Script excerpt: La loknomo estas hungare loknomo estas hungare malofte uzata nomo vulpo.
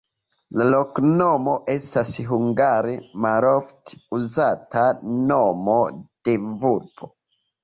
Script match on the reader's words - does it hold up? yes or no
no